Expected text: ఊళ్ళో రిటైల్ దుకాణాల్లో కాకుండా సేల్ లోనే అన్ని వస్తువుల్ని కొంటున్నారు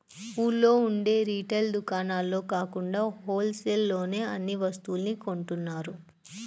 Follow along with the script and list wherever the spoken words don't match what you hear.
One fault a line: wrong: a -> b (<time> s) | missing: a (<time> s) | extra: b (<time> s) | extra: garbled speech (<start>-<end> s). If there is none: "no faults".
extra: ఉండే (0.8 s)
extra: హోల్ (3.2 s)